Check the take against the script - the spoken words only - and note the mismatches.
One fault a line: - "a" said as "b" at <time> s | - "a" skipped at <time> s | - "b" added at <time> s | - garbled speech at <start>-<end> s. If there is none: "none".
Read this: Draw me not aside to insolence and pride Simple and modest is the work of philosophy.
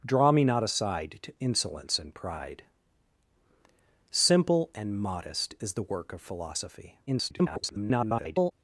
- garbled speech at 7.1-8.5 s